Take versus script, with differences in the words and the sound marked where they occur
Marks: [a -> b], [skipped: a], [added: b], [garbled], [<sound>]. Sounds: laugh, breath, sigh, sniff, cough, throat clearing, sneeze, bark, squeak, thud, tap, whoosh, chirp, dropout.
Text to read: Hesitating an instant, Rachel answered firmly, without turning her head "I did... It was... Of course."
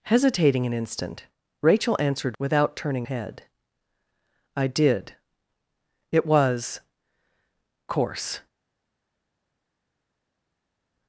Hesitating an instant, Rachel answered [skipped: firmly,] without turning [skipped: her] head "I did... It was... [skipped: Of] course."